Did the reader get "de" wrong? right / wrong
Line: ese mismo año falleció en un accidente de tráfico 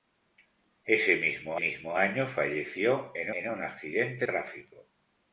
wrong